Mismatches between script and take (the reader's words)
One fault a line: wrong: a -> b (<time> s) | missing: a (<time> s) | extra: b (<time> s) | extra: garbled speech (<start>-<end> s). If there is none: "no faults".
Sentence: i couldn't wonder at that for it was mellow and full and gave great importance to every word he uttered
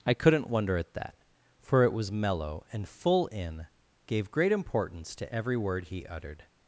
wrong: and -> in (3.3 s)